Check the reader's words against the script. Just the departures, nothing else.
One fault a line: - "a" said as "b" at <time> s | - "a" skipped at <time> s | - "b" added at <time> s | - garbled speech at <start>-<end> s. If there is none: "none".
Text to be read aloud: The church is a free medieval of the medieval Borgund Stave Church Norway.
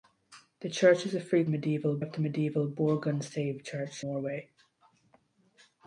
none